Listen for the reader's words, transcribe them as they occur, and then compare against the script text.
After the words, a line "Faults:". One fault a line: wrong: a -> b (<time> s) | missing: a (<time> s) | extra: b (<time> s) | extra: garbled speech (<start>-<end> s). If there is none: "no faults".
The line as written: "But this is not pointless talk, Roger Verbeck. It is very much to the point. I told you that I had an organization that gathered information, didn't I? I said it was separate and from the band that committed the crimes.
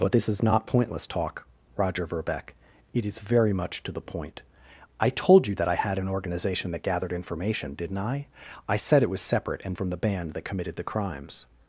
"But this is not pointless talk, Roger Verbeck. It is very much to the point. I told you that I had an organization that gathered information, didn't I? I said it was separate and from the band that committed the crimes.
Faults:
no faults